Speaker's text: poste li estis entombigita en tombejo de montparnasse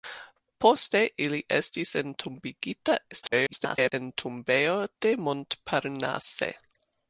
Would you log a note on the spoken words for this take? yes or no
yes